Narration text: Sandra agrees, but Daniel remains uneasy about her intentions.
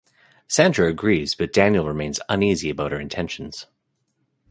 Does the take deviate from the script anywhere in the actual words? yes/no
no